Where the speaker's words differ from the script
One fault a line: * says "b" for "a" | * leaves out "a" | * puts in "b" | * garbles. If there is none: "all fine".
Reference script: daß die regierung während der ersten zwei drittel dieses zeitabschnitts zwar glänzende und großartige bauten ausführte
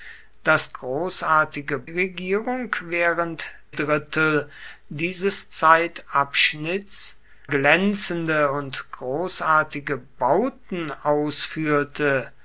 * says "großartige" for "die"
* leaves out "der ersten zwei"
* leaves out "zwar"